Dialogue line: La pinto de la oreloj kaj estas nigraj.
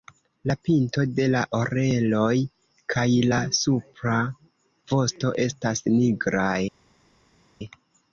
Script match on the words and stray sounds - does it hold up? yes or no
no